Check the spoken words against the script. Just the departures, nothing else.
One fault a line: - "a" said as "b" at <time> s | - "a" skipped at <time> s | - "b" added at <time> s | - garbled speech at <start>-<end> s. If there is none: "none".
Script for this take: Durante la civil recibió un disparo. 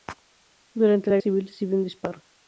none